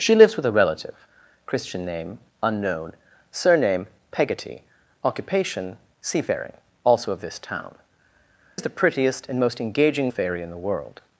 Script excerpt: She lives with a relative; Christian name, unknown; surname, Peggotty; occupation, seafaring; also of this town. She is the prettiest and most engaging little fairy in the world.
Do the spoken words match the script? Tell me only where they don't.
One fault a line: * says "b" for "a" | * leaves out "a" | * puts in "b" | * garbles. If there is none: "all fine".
* leaves out "She"
* leaves out "little"